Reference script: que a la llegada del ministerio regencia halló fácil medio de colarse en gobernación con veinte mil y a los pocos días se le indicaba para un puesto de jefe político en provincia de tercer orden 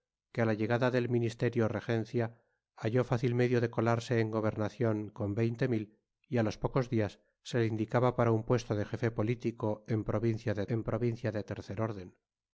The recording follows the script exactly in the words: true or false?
false